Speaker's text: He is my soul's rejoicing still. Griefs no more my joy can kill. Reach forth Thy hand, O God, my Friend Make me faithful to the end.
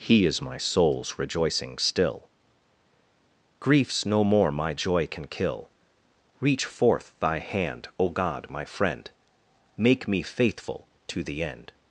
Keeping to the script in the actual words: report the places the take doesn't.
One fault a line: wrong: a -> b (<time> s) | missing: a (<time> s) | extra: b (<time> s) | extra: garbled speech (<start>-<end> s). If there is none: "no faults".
no faults